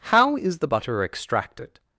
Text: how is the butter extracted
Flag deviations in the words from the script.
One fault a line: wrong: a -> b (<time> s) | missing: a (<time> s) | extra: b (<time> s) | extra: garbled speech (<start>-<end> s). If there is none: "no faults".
no faults